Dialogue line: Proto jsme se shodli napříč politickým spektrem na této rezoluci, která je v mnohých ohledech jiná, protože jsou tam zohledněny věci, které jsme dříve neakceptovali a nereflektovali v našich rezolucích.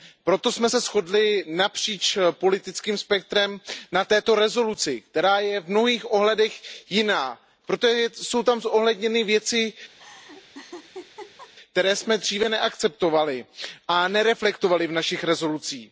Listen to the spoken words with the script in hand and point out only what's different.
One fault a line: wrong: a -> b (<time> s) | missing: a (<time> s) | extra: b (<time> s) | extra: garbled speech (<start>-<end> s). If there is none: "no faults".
no faults